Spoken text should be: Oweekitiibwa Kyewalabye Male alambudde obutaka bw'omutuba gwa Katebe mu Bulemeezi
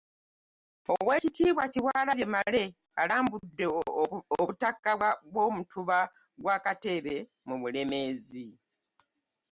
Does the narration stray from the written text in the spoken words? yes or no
no